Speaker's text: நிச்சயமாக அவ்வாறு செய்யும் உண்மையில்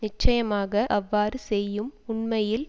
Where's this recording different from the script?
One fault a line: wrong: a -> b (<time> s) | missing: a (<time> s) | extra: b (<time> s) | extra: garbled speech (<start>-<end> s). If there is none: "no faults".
no faults